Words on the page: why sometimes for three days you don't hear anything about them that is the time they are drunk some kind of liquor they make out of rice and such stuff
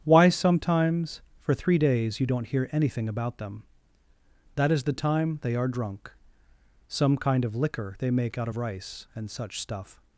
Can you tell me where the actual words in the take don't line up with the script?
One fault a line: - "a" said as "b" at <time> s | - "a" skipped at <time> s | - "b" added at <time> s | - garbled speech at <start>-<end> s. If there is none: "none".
none